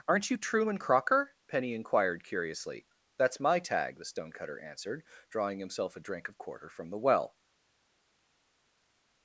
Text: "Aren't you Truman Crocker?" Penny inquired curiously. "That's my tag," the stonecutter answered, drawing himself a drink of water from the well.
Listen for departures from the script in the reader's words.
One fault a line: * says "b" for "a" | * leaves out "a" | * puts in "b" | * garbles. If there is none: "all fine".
* says "quarter" for "water"